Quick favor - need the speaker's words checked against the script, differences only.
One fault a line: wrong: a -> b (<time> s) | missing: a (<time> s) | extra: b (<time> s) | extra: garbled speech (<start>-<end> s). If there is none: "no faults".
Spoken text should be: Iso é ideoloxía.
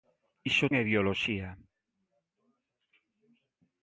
no faults